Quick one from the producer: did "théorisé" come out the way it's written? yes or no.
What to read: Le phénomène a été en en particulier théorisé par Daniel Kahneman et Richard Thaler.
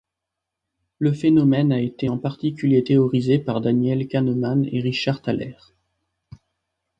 yes